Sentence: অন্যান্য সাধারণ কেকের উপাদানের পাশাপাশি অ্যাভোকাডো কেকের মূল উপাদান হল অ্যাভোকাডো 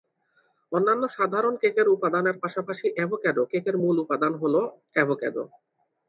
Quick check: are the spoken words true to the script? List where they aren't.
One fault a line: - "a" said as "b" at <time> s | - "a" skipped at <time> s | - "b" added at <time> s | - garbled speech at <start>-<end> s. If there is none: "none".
none